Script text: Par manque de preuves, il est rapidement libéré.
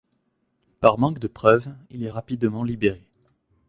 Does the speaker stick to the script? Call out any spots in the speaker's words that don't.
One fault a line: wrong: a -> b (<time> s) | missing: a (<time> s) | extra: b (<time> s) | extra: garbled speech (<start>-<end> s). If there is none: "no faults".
no faults